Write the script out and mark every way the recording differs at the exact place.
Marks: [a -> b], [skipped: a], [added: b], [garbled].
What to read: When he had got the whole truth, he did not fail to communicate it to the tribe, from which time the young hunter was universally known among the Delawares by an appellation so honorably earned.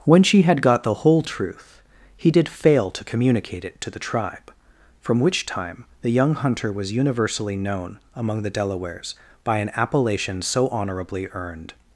When [he -> she] had got the whole truth, he did [skipped: not] fail to communicate it to the tribe, from which time the young hunter was universally known among the Delawares by an appellation so honorably earned.